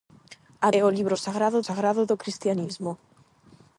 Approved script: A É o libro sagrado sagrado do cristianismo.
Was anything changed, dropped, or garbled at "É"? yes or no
no